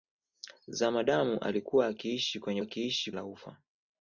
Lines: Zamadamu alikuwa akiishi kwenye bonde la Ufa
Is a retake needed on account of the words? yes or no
yes